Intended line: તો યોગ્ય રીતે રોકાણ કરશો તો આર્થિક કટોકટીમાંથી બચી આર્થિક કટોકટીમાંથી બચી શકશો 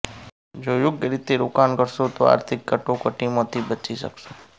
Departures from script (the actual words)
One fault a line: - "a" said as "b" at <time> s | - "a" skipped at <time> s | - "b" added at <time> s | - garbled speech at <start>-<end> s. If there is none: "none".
- "તો" said as "જો" at 0.6 s
- "આર્થિક કટોકટીમાંથી બચી" skipped at 4.0 s